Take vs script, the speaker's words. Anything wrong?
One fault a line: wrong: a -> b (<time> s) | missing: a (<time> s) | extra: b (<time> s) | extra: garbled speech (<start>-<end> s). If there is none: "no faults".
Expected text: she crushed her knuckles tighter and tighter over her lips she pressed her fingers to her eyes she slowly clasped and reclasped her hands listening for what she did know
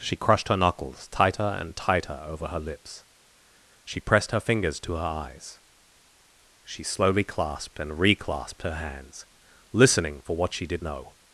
no faults